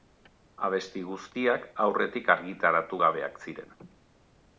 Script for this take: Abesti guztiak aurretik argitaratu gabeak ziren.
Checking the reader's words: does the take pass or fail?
pass